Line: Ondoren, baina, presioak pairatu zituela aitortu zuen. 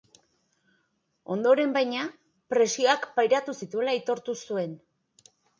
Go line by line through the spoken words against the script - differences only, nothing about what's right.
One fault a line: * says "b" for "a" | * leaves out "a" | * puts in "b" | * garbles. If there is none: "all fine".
all fine